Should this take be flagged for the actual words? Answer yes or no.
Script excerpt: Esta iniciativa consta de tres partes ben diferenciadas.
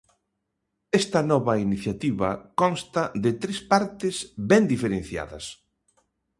yes